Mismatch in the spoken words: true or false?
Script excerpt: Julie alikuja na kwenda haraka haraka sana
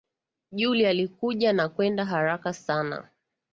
true